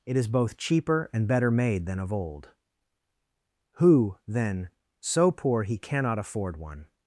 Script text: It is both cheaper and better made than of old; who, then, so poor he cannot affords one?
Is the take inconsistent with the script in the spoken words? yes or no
yes